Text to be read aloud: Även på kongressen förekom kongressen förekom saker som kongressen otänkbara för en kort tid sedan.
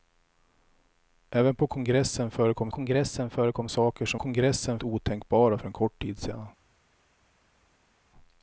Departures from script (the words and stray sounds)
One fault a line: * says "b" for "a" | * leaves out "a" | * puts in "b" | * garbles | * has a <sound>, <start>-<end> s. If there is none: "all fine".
all fine